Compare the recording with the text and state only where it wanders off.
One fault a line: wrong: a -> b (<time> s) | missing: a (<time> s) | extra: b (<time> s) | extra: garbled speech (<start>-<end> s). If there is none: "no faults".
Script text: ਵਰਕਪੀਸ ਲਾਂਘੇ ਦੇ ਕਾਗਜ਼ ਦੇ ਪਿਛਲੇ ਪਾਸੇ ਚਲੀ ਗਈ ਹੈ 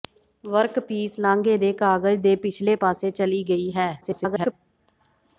extra: garbled speech (4.0-4.5 s)